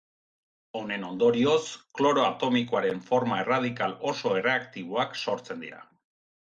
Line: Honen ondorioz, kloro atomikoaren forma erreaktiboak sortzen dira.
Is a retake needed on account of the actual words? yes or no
yes